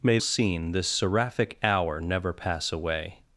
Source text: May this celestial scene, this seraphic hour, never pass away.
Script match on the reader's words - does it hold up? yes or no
no